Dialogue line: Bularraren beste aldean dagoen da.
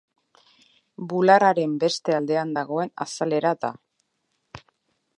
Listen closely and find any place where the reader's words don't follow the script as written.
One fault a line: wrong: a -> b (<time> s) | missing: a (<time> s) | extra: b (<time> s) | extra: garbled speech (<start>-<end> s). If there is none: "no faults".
extra: azalera (3.1 s)